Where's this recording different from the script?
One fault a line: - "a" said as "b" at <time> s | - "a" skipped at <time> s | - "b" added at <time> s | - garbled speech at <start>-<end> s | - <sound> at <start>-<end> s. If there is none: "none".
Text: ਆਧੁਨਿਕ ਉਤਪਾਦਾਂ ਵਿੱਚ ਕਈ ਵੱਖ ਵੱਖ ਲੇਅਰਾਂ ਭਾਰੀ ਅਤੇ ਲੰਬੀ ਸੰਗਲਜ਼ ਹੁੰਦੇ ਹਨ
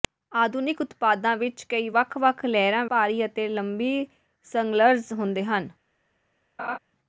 - laugh at 6.6-6.8 s